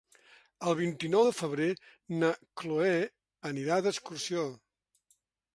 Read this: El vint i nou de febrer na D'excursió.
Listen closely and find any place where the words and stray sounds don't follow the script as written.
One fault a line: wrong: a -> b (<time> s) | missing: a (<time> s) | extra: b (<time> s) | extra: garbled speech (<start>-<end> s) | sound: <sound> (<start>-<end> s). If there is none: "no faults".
extra: Cloè anirà (2.6 s)